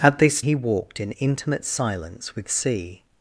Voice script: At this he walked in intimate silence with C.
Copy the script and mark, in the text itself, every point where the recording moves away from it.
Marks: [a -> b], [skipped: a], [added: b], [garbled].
At this he walked in intimate silence with C.